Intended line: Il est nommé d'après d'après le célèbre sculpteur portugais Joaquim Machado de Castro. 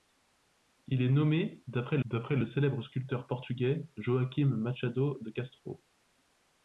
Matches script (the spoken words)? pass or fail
pass